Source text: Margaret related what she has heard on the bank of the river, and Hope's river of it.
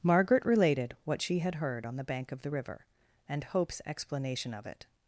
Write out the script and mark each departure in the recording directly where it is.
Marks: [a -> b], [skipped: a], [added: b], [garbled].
Margaret related what she [has -> had] heard on the bank of the river, and Hope's [river -> explanation] of it.